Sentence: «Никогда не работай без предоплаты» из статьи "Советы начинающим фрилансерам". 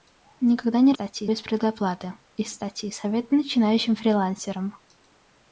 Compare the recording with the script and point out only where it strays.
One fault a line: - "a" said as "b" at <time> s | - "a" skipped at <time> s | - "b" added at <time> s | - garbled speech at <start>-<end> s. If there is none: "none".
- "работай" said as "статьи" at 0.9 s